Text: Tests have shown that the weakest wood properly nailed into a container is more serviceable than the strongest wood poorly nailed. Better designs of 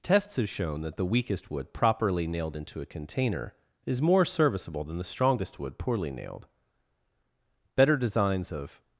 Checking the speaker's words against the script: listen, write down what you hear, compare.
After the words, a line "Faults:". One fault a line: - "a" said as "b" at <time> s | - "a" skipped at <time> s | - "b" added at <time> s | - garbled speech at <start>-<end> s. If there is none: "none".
Tests have shown that the weakest wood properly nailed into a container is more serviceable than the strongest wood poorly nailed. Better designs of
Faults:
none